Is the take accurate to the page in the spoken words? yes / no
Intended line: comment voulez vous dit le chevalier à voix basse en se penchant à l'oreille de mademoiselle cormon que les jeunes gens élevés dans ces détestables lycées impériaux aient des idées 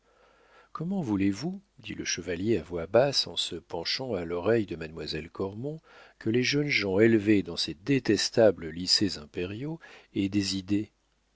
yes